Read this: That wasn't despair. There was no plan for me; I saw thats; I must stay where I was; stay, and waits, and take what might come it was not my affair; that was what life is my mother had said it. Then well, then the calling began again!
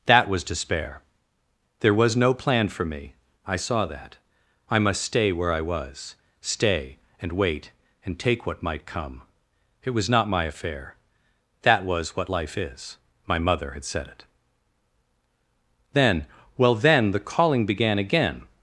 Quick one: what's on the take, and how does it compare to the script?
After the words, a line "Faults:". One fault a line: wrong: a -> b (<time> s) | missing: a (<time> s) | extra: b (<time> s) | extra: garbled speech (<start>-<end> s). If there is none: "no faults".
That was despair. There was no plan for me; I saw that; I must stay where I was; stay, and wait, and take what might come it was not my affair; that was what life is my mother had said it. Then well, then the calling began again!
Faults:
wrong: wasn't -> was (0.3 s)
wrong: thats -> that (3.9 s)
wrong: waits -> wait (7.3 s)